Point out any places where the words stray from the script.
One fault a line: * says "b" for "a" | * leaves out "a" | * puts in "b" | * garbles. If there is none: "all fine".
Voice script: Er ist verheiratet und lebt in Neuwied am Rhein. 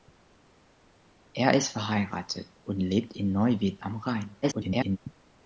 * garbles